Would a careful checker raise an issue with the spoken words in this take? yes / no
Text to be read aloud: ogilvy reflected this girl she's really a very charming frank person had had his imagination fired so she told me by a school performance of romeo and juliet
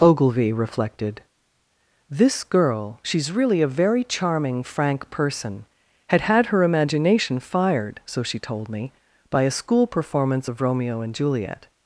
yes